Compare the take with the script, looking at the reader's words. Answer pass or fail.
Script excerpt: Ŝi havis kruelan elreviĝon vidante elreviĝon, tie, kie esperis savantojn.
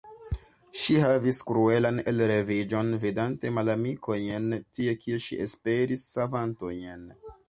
fail